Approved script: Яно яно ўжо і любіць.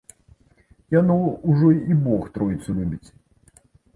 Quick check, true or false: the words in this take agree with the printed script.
false